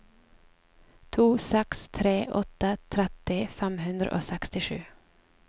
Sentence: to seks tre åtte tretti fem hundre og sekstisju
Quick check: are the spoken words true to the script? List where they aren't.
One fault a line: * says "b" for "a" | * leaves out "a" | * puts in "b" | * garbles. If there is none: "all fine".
all fine